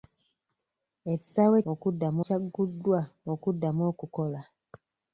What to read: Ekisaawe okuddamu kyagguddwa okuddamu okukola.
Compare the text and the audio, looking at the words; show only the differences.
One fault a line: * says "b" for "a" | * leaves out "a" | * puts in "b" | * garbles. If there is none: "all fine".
all fine